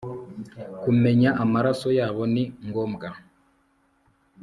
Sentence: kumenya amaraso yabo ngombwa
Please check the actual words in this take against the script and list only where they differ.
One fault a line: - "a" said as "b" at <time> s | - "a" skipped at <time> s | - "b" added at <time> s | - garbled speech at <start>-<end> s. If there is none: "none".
- "ni" added at 2.3 s